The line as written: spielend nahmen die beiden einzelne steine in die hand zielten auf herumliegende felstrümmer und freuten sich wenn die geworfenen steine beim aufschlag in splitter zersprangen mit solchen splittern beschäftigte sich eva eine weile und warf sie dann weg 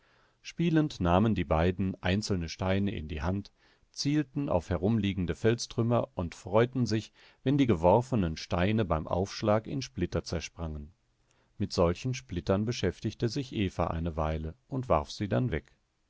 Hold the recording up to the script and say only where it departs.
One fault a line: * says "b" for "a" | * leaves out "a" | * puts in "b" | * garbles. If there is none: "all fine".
all fine